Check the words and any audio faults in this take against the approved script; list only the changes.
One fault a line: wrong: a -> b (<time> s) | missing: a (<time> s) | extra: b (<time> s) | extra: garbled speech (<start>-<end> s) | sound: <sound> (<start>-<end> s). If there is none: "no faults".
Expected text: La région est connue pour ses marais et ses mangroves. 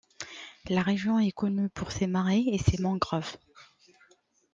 no faults